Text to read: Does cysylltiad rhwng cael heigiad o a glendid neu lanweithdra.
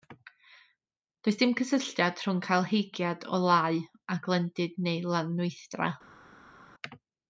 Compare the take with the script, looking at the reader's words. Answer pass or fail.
fail